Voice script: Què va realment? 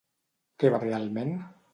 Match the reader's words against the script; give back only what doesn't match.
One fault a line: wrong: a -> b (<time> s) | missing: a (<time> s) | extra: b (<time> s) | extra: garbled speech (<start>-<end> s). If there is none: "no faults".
no faults